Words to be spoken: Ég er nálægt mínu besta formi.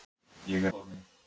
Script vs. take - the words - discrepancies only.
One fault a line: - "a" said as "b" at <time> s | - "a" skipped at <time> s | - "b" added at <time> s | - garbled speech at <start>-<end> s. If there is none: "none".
- "nálægt mínu besta" skipped at 0.7 s